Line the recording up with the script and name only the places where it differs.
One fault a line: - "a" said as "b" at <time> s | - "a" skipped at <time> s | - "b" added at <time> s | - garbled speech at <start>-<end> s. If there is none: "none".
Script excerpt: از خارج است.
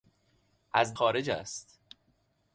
none